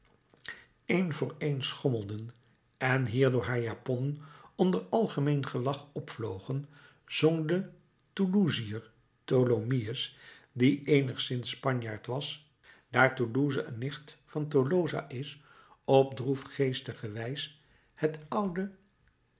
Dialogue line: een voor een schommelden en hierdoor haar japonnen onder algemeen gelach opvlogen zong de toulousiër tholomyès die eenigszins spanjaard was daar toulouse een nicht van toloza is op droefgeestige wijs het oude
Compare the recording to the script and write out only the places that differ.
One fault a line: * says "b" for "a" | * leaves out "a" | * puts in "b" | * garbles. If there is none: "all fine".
all fine